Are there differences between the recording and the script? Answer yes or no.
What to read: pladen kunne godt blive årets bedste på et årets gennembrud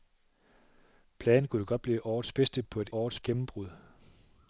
no